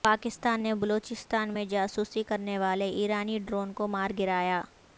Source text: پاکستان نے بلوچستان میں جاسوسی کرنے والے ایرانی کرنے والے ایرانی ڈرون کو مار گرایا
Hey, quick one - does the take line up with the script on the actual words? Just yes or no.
no